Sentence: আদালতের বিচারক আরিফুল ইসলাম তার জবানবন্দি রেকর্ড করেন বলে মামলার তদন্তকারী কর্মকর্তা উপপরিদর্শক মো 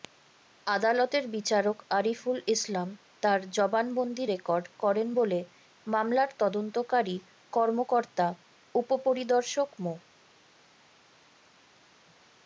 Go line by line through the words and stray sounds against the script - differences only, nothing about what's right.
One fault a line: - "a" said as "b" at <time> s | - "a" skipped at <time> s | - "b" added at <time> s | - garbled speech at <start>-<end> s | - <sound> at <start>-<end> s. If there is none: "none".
none